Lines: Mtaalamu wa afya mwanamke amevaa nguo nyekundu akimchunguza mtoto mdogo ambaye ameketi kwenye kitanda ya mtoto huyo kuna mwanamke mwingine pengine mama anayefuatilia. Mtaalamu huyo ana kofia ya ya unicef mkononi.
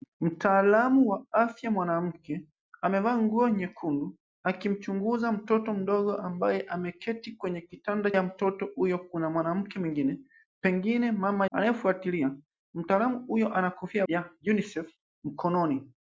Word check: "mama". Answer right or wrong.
right